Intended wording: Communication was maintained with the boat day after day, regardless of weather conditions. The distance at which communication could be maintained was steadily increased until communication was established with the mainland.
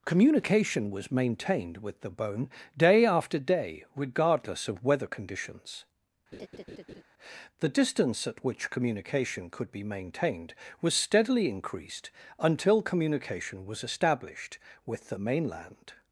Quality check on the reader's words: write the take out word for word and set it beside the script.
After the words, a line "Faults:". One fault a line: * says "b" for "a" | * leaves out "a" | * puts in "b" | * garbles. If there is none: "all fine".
Communication was maintained with the bone day after day, regardless of weather conditions. The distance at which communication could be maintained was steadily increased until communication was established with the mainland.
Faults:
* says "bone" for "boat"